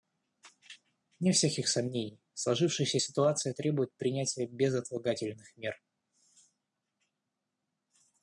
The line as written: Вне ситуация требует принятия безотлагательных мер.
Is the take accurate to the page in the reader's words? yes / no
no